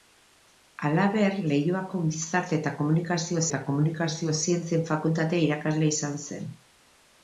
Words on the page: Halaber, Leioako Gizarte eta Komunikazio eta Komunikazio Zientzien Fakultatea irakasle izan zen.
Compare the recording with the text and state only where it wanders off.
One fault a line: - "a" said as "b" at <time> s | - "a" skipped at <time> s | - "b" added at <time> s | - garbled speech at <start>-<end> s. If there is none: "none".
none